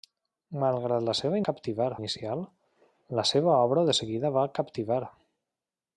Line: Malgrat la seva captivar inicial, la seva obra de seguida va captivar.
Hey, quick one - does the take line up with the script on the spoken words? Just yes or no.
yes